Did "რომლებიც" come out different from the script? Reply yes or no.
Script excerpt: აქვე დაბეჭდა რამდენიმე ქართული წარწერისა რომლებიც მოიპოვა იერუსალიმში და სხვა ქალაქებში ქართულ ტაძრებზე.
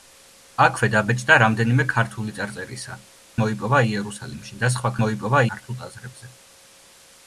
yes